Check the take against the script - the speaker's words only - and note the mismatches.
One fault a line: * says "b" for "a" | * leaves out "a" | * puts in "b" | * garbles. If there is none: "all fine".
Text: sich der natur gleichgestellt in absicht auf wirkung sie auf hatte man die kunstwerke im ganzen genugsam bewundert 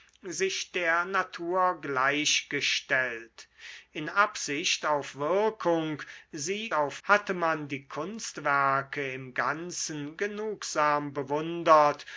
all fine